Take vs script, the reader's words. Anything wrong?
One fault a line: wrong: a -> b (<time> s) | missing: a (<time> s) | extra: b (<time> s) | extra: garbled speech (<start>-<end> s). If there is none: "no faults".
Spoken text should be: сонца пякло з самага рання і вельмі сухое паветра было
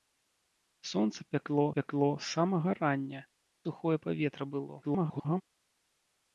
extra: пякло (1.8 s)
missing: і вельмі (3.2 s)
extra: garbled speech (4.8-5.4 s)